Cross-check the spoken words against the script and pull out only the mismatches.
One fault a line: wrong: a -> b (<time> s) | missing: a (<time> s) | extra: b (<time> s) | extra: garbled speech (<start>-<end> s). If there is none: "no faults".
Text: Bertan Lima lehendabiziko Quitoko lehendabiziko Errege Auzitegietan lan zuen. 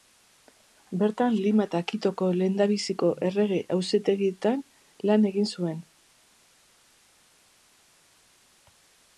wrong: lehendabiziko -> eta (1.7 s)
extra: egin (5.3 s)